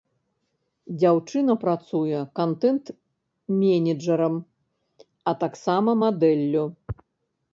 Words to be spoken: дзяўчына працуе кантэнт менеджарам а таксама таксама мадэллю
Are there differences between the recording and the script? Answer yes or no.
yes